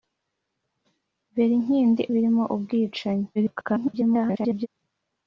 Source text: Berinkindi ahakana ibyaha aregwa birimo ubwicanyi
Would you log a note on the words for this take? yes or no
yes